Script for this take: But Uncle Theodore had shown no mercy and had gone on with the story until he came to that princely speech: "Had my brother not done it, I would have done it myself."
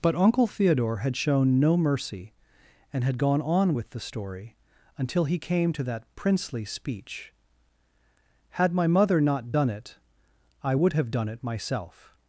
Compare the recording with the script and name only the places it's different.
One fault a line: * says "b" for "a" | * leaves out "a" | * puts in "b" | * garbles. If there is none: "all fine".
* says "mother" for "brother"